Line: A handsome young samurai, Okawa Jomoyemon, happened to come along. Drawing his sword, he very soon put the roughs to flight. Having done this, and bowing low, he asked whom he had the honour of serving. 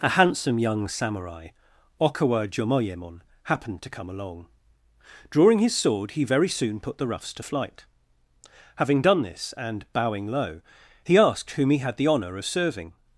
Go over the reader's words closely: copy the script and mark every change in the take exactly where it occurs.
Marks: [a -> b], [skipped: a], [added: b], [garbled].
A handsome young samurai, Okawa Jomoyemon, happened to come along. Drawing his sword, he very soon put the roughs to flight. Having done this, and bowing low, he asked whom he had the honour of serving.